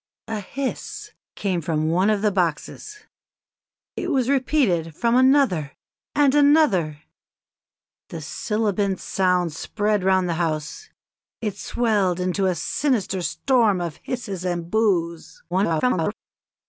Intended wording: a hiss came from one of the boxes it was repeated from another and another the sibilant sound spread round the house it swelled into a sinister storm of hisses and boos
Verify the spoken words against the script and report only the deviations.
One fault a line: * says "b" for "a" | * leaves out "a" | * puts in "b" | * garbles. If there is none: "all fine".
* garbles